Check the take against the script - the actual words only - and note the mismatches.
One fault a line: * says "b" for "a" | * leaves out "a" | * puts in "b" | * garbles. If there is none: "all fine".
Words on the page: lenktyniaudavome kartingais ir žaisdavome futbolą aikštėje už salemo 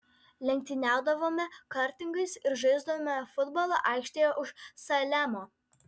all fine